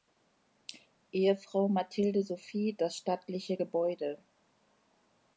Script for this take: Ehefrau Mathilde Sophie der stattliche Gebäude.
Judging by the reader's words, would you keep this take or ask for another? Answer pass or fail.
fail